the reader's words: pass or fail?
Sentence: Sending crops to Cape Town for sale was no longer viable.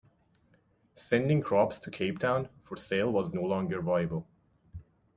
pass